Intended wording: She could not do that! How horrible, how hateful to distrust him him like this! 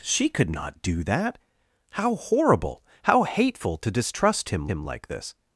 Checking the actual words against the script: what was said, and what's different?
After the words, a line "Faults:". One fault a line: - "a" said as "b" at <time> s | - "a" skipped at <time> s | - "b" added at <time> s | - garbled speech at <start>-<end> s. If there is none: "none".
She could not do that! How horrible, how hateful to distrust him him like this!
Faults:
none